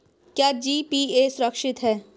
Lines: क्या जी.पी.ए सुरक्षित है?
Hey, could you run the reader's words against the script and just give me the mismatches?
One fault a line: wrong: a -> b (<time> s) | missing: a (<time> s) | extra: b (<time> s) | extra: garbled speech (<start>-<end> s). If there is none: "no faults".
no faults